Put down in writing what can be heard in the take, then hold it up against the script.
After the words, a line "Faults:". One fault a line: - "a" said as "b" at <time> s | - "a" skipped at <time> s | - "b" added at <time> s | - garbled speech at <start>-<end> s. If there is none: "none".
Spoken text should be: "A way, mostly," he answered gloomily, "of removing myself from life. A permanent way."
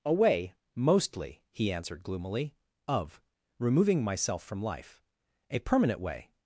"A way, mostly," he answered gloomily, "of removing myself from life. A permanent way."
Faults:
none